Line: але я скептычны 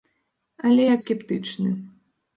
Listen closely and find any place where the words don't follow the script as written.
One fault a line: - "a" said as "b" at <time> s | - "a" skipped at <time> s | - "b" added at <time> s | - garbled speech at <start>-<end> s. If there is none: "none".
none